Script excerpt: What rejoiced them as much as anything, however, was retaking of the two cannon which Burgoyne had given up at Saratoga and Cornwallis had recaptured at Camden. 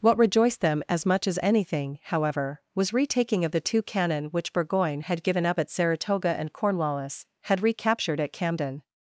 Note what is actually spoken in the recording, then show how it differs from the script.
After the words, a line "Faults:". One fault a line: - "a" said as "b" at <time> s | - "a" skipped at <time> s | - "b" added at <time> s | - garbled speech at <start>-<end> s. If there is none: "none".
What rejoiced them as much as anything, however, was retaking of the two cannon which Burgoyne had given up at Saratoga and Cornwallis had recaptured at Camden.
Faults:
none